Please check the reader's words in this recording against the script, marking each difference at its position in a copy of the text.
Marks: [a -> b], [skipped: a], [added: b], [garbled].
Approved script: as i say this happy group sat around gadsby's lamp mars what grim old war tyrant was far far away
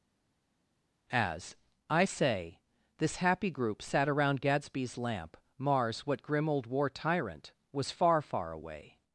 as i say this happy group sat around gadsby's lamp mars what grim old war tyrant was far far away